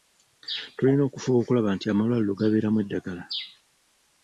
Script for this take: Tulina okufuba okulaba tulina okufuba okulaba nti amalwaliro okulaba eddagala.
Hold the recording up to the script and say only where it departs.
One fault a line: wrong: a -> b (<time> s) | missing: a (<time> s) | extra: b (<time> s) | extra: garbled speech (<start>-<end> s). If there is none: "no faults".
missing: tulina okufuba okulaba (1.7 s)
wrong: okulaba -> gabeeramu (2.4 s)